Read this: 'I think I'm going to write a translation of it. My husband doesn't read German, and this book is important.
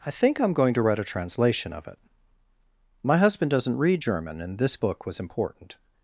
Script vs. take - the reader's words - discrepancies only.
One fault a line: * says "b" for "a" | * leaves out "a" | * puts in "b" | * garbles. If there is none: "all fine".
* says "was" for "is"